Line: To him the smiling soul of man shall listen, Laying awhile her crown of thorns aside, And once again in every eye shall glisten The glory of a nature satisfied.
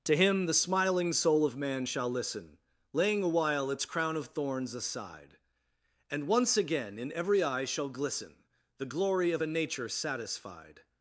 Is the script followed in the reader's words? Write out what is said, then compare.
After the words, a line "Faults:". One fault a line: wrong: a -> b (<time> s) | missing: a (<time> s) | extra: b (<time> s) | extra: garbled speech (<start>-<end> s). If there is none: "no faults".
To him the smiling soul of man shall listen, Laying awhile its crown of thorns aside, And once again in every eye shall glisten The glory of a nature satisfied.
Faults:
wrong: her -> its (3.7 s)